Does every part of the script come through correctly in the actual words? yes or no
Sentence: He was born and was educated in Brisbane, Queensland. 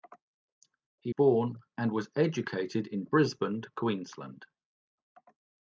no